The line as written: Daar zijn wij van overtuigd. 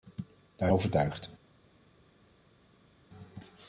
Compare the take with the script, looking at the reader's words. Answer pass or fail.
fail